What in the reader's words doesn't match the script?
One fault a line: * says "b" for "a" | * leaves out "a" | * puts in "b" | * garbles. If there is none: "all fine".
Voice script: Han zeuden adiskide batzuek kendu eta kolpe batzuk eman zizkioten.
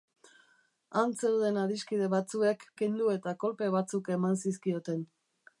all fine